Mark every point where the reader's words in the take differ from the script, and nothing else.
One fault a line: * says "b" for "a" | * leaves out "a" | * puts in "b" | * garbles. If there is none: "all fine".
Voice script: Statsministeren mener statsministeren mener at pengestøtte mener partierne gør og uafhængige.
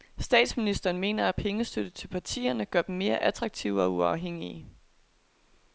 * leaves out "statsministeren mener"
* says "til" for "mener"
* puts in "dem mere attraktive"